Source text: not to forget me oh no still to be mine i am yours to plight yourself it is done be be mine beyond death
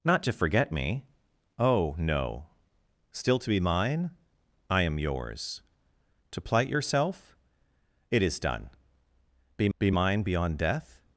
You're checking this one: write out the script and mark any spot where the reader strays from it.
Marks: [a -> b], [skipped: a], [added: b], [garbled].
not to forget me oh no still to be mine i am yours to plight yourself it is done be be mine beyond death